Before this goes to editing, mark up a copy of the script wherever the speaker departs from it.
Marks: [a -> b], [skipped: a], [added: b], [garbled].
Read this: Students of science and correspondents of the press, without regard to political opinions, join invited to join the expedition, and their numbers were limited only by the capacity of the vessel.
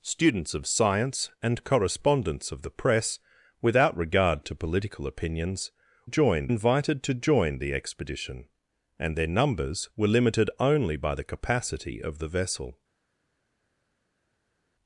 Students of science and correspondents of the press, without regard to political opinions, join invited to join the expedition, and their numbers were limited only by the capacity of the vessel.